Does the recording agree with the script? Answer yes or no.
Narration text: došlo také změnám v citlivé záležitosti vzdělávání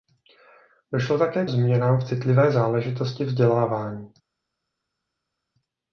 yes